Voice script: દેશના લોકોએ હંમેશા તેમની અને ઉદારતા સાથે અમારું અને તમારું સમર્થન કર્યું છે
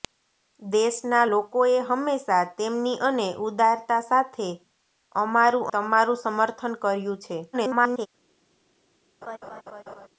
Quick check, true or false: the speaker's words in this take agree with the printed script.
false